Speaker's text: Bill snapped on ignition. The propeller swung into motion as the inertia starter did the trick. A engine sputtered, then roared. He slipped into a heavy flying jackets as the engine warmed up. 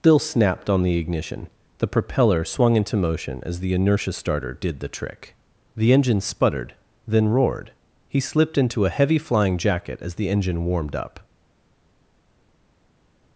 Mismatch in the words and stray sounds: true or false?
true